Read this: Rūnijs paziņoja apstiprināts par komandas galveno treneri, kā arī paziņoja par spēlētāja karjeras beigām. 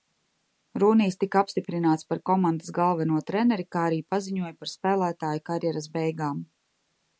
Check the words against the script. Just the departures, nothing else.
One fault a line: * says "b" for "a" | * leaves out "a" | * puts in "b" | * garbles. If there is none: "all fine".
* says "tika" for "paziņoja"